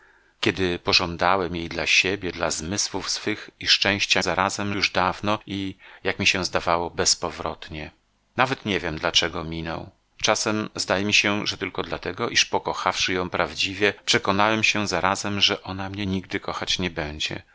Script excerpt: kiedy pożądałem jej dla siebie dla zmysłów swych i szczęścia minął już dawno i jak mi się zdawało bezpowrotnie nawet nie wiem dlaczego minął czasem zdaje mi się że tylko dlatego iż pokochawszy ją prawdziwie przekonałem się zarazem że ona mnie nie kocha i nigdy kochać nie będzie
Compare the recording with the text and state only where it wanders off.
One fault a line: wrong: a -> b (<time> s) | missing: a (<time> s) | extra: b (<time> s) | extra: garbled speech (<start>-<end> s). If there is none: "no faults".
wrong: minął -> zarazem (4.2 s)
missing: nie kocha i (16.1 s)